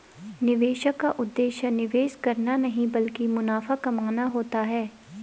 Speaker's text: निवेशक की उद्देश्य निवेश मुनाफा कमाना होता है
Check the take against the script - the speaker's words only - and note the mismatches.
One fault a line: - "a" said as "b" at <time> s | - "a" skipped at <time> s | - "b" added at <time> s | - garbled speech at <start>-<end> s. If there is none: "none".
- "की" said as "का" at 1.0 s
- "करना नहीं ब्लकि" added at 2.1 s